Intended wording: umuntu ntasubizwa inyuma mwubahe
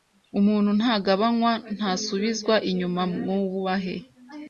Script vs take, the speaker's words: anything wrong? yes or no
yes